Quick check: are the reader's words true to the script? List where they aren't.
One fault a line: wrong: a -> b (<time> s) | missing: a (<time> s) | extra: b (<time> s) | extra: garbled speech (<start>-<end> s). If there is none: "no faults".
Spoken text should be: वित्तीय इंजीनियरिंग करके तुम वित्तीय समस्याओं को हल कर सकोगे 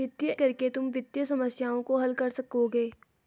missing: इंजीनियरिंग (0.3 s)